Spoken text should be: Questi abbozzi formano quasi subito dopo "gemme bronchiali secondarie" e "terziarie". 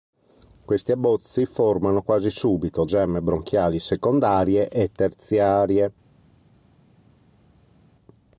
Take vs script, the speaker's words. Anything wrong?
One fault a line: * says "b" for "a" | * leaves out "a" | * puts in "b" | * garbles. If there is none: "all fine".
* leaves out "dopo"